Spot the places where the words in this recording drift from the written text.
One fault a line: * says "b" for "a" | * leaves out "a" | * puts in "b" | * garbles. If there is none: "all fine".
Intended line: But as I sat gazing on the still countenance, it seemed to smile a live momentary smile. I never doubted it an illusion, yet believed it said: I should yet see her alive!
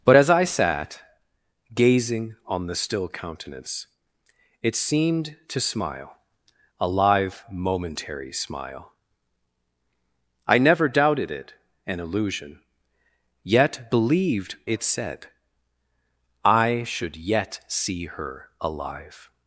all fine